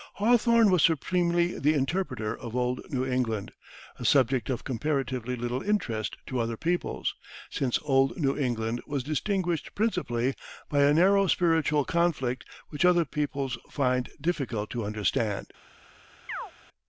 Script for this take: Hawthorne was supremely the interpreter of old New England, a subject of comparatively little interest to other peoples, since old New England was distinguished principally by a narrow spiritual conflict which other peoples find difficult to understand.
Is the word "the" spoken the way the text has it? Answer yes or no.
yes